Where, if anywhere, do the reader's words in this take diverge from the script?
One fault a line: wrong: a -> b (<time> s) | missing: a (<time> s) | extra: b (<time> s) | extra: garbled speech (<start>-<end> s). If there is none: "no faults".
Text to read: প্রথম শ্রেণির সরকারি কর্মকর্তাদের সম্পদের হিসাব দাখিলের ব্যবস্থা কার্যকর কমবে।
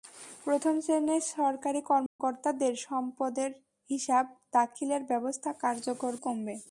no faults